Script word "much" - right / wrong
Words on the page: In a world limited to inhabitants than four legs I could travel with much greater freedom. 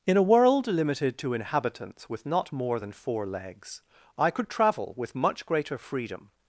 right